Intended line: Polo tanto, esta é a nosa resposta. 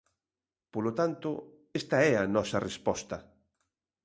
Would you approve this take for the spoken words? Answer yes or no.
yes